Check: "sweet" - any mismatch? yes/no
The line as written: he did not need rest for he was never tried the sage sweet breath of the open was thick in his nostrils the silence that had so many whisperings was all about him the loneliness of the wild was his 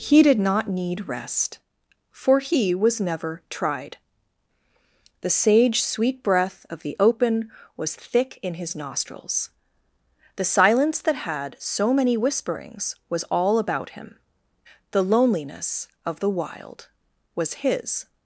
no